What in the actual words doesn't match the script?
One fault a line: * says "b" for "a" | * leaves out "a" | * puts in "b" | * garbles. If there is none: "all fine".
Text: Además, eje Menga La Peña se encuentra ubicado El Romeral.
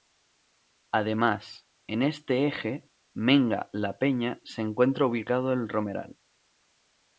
* puts in "en este"